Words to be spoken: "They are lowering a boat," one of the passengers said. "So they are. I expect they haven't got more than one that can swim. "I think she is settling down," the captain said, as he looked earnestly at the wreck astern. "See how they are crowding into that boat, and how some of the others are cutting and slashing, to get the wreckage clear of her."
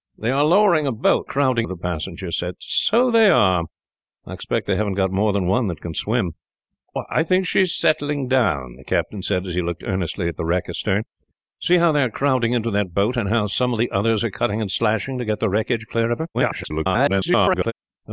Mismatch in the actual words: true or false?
true